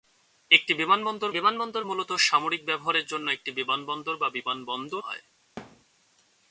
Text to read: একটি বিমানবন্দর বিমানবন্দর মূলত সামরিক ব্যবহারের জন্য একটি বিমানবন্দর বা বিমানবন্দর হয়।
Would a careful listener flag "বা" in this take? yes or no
no